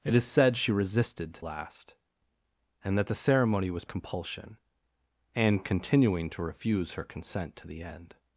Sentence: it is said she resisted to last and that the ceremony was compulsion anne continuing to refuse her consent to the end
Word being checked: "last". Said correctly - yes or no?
yes